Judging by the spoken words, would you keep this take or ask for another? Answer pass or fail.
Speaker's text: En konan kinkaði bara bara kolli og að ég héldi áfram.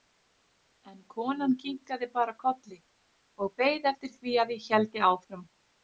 fail